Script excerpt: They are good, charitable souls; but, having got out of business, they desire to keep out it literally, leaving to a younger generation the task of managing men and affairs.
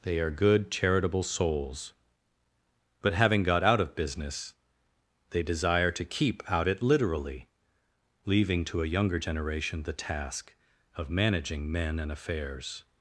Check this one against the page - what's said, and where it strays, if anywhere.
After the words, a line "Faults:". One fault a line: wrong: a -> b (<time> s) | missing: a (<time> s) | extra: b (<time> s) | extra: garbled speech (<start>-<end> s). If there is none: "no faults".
They are good, charitable souls; but, having got out of business, they desire to keep out it literally, leaving to a younger generation the task of managing men and affairs.
Faults:
no faults